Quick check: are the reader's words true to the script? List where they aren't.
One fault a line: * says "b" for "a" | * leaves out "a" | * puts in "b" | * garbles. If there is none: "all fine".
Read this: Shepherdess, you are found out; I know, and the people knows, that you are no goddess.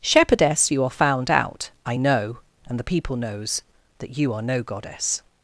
all fine